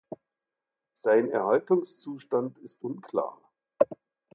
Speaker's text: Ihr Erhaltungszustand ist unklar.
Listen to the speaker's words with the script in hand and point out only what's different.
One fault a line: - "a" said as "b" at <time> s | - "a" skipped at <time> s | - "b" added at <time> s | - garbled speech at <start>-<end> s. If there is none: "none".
- "Ihr" said as "Sein" at 0.9 s